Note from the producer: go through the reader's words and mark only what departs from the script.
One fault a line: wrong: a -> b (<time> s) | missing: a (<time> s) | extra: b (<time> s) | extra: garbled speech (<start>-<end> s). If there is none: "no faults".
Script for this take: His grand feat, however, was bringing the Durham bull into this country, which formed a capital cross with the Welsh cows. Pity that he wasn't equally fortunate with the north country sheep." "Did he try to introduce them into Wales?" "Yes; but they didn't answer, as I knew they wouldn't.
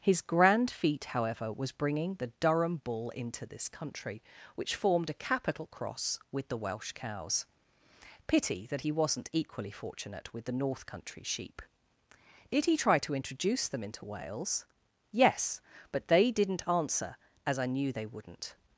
no faults